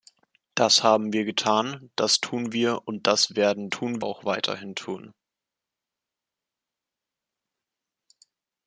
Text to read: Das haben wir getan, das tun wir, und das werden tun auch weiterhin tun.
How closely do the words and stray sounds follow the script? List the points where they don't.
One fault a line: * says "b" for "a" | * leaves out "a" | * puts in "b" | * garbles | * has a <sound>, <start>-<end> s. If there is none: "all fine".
all fine